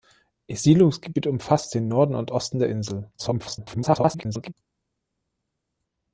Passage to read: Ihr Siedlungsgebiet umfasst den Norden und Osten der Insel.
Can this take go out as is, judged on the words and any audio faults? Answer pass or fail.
fail